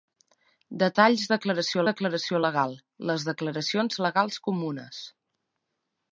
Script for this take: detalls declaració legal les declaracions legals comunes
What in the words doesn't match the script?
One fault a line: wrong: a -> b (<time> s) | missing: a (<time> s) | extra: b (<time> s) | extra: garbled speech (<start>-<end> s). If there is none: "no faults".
extra: declaració (1.9 s)